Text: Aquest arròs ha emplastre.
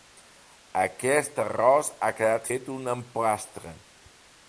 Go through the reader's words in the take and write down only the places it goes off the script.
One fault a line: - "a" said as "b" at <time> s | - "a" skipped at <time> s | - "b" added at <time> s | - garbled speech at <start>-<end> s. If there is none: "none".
- "quedat fet un" added at 2.2 s